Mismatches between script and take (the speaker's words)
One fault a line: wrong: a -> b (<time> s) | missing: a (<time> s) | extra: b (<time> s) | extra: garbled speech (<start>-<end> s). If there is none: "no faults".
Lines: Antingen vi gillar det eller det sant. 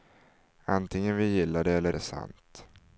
no faults